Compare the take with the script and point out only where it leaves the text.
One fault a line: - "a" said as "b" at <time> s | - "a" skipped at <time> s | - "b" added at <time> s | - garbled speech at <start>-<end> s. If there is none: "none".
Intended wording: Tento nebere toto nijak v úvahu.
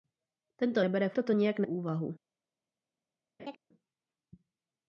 none